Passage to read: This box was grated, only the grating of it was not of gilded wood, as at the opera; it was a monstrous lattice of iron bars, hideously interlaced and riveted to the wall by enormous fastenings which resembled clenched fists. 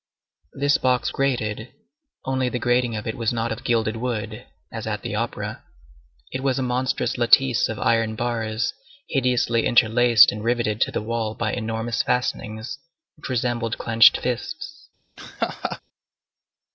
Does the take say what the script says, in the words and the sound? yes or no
no